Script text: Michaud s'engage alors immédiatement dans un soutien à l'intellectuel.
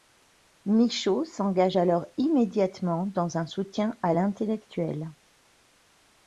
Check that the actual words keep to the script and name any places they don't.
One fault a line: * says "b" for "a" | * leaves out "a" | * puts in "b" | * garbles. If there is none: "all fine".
all fine